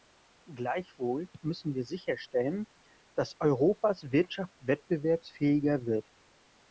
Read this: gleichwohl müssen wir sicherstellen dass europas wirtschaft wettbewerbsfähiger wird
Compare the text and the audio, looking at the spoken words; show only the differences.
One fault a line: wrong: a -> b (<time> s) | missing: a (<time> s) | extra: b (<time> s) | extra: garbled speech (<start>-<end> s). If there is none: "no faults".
no faults